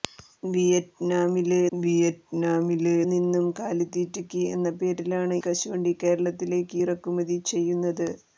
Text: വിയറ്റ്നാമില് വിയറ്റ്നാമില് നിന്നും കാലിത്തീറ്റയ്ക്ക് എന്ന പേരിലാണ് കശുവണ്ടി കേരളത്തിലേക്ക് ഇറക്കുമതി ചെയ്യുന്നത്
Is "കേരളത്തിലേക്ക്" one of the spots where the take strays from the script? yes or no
no